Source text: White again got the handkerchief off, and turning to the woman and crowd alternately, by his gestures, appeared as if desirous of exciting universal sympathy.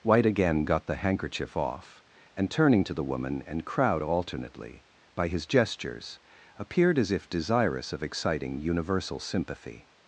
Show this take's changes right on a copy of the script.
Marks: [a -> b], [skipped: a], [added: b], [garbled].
White again got the handkerchief off, and turning to the woman and crowd alternately, by his gestures, appeared as if desirous of exciting universal sympathy.